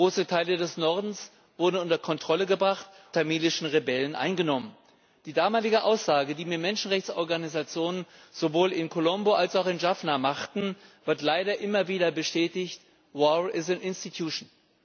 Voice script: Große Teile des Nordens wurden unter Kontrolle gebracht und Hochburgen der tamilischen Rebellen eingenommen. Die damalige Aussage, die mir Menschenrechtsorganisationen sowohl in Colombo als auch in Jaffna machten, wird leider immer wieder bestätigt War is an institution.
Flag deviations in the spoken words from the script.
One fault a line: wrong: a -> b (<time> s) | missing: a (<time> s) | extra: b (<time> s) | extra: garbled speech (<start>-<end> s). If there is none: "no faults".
missing: und Hochburgen der (2.9 s)